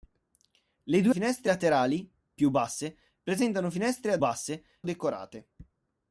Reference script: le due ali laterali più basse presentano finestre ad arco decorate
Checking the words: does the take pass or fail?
fail